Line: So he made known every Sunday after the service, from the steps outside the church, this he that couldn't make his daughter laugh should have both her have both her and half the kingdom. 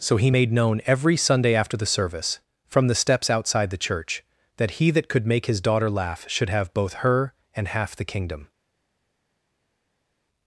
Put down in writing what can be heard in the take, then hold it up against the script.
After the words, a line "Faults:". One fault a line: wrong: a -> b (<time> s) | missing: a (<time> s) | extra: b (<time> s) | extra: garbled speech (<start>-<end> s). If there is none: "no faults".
So he made known every Sunday after the service, from the steps outside the church, that he that could make his daughter laugh should have both her and half the kingdom.
Faults:
wrong: this -> that (4.6 s)
wrong: couldn't -> could (5.1 s)
missing: have both her (7.3 s)